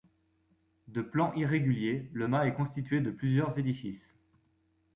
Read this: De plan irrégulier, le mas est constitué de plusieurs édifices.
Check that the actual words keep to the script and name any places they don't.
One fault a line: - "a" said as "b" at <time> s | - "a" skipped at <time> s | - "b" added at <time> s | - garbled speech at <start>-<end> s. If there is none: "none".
none